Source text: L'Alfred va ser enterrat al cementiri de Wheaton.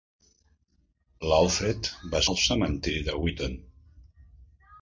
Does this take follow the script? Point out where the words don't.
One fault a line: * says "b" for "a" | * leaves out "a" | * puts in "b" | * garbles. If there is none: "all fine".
* leaves out "ser enterrat"